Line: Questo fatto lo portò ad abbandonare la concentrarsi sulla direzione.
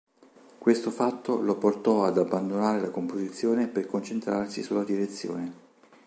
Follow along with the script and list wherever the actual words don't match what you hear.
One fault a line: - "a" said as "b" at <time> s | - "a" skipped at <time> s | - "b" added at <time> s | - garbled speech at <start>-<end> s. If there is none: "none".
- "composizione per" added at 2.9 s